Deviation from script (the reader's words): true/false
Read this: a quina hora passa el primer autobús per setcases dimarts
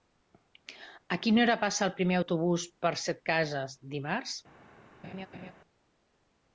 false